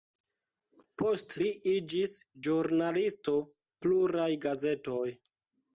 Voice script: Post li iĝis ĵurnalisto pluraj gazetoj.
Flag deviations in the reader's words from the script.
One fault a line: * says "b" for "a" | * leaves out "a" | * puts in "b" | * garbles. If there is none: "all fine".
all fine